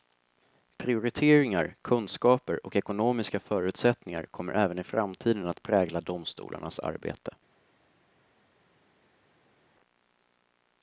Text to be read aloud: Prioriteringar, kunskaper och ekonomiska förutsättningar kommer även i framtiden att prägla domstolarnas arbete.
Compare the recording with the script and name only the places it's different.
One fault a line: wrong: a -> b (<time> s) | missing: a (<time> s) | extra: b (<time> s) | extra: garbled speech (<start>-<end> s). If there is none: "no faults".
no faults